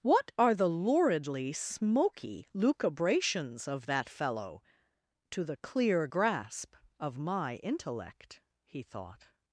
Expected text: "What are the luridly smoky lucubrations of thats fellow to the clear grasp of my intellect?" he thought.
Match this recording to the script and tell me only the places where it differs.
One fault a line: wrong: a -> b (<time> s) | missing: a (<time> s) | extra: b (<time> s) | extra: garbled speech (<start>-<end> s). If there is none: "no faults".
wrong: thats -> that (3.9 s)